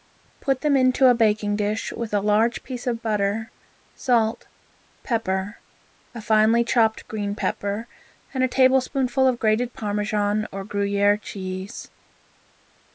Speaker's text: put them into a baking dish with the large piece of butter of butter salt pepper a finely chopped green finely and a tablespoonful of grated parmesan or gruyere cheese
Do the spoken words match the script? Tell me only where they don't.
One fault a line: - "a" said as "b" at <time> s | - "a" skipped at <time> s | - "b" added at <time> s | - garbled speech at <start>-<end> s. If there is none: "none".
- "the" said as "a" at 2.1 s
- "of butter" skipped at 3.5 s
- "finely" said as "pepper" at 7.3 s